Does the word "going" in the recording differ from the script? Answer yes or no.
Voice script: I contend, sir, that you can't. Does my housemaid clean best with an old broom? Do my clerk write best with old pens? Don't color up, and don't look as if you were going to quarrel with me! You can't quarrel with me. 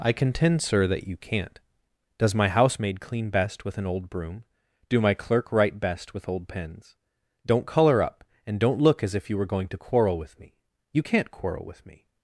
no